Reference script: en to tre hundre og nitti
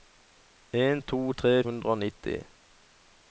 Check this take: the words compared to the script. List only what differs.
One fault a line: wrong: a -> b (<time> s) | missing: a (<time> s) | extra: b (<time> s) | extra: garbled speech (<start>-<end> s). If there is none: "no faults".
no faults